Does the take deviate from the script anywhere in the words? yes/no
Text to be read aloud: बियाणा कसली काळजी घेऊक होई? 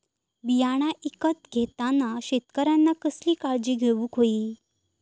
yes